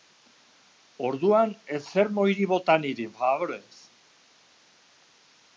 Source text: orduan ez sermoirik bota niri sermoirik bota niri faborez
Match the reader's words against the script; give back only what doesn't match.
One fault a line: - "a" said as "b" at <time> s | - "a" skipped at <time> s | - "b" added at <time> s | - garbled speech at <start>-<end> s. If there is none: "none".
- "sermoirik bota niri" skipped at 3.1 s